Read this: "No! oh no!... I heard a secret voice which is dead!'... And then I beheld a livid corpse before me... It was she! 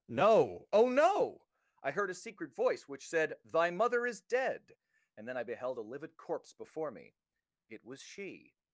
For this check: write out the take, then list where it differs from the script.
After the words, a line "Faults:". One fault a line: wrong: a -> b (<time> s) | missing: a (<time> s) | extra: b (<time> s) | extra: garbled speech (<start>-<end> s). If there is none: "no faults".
"No! oh no!... I heard a secret voice which said, 'Thy mother is dead!'... And then I beheld a livid corpse before me... It was she!
Faults:
extra: said Thy mother (3.1 s)